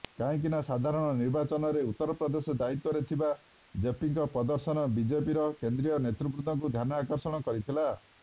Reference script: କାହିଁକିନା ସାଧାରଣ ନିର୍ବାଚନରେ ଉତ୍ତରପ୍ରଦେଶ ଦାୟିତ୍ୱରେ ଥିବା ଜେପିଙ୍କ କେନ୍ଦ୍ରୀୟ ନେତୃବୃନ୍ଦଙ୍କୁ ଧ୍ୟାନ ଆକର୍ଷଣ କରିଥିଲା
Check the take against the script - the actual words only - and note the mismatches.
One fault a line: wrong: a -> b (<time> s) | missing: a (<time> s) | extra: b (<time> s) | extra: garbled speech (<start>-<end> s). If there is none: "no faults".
extra: ପ୍ରଦର୍ଶନ ବିଜେପିର (4.3 s)